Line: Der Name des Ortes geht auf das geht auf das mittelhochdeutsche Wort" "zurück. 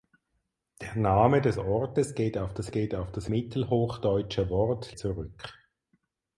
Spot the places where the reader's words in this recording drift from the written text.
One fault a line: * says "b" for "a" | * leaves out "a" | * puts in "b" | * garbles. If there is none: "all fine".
all fine